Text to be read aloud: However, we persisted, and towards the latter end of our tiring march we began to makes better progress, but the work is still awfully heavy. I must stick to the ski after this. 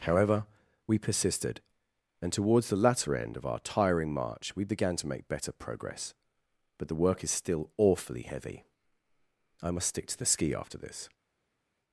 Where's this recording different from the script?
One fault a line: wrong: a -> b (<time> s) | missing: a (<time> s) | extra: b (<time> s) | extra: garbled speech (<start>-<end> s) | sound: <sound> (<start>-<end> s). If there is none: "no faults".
wrong: makes -> make (5.1 s)